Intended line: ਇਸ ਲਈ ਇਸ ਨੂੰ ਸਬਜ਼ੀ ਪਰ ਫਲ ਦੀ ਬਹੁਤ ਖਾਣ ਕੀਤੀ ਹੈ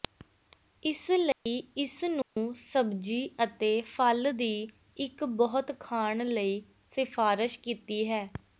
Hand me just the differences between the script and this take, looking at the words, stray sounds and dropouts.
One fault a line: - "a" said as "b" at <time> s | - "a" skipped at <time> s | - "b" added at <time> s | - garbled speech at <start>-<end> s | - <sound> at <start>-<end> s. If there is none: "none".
- dropout at 1.3-1.5 s
- dropout at 2.2-2.4 s
- "ਪਰ" said as "ਅਤੇ" at 3.4 s
- "ਇੱਕ" added at 5.0 s
- "ਲਈ ਸਿਫਾਰਸ਼" added at 6.2 s